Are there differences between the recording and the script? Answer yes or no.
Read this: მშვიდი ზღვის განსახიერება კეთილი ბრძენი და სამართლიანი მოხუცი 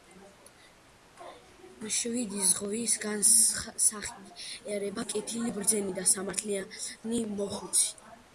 no